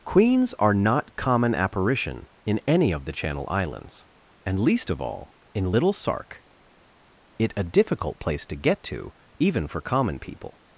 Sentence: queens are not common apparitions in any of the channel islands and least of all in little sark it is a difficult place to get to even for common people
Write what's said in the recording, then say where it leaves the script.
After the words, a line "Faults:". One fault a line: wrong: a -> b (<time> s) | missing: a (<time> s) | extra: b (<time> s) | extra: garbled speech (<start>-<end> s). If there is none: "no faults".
queens are not common apparition in any of the channel islands and least of all in little sark it a difficult place to get to even for common people
Faults:
wrong: apparitions -> apparition (1.5 s)
missing: is (7.5 s)